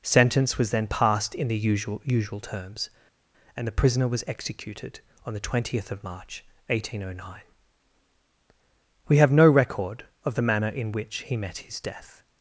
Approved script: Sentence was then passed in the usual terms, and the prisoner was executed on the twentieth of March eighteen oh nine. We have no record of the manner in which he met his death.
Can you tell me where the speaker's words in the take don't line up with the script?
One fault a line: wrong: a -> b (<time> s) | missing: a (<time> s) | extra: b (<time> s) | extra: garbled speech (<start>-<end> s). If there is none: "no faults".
extra: usual (2.0 s)